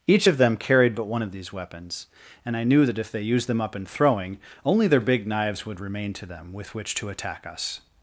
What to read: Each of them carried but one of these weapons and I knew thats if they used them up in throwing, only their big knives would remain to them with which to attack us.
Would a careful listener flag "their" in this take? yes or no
no